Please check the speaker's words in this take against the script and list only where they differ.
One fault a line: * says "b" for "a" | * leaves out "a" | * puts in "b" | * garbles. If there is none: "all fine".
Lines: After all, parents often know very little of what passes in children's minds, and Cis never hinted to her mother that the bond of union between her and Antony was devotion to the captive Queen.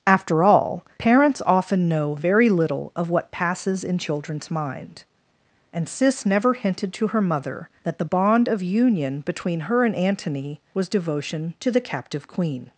* says "mind" for "minds"